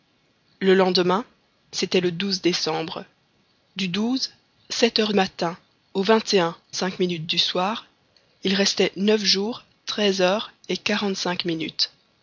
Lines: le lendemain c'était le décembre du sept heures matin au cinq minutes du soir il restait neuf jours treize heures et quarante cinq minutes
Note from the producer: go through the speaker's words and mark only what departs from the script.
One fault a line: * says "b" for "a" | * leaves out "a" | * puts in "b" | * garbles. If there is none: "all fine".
all fine